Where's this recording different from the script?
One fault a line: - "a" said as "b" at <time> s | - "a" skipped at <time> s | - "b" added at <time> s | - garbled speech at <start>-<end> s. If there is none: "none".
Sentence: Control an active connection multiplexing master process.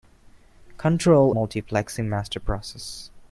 - "an active connection" skipped at 1.4 s